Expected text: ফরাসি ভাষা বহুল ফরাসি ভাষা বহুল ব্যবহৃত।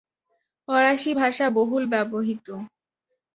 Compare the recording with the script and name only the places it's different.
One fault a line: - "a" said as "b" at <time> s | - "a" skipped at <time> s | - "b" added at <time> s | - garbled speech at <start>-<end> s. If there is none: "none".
- "ফরাসি ভাষা বহুল" skipped at 1.8 s